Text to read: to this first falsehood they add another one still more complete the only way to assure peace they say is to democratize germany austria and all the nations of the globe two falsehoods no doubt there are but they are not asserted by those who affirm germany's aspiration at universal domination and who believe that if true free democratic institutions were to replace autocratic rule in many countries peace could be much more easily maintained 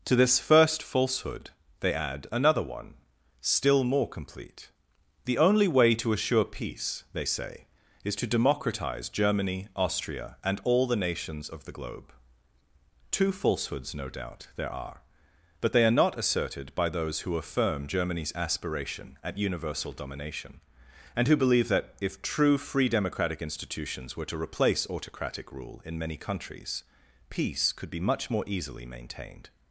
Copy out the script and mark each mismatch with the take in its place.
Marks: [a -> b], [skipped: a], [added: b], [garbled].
to this first falsehood they add another one still more complete the only way to assure peace they say is to democratize germany austria and all the nations of the globe two falsehoods no doubt there are but they are not asserted by those who affirm germany's aspiration at universal domination and who believe that if true free democratic institutions were to replace autocratic rule in many countries peace could be much more easily maintained